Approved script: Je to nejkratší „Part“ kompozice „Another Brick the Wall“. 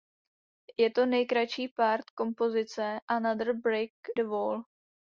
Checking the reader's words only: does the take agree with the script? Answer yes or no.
yes